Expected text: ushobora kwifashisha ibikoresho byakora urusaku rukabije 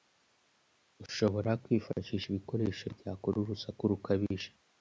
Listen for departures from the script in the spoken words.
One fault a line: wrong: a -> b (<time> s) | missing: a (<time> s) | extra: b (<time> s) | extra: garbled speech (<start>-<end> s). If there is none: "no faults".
no faults